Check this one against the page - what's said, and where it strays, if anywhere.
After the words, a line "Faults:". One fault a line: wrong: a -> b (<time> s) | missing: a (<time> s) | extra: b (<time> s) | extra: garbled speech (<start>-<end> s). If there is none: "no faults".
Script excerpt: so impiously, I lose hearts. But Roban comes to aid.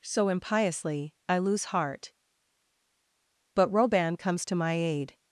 so impiously, I lose heart. But Roban comes to my aid.
Faults:
wrong: hearts -> heart (1.6 s)
extra: my (4.6 s)